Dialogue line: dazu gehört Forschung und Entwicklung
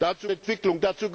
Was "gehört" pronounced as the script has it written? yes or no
no